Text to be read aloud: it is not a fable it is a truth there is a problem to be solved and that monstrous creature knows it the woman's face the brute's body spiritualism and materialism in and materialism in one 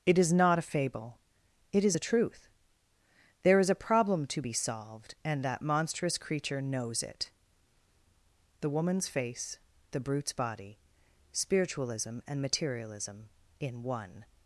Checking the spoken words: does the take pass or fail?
fail